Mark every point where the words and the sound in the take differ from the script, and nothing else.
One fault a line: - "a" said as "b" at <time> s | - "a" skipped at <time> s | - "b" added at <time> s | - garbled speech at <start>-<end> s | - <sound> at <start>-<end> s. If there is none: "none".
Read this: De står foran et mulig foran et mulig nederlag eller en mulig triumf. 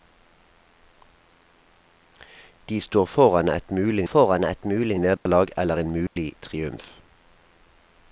- dropout at 5.2-5.3 s
- dropout at 6.1-6.2 s